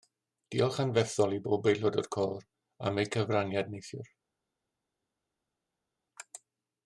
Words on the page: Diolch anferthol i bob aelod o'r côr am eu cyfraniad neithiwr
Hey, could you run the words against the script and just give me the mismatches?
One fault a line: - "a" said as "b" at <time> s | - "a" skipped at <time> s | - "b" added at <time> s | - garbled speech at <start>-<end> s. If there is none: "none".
none